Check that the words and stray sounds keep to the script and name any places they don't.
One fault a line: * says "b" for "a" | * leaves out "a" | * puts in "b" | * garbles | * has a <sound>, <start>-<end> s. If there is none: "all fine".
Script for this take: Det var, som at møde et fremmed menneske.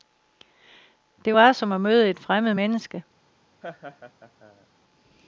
* has a laugh, 3.6-4.7 s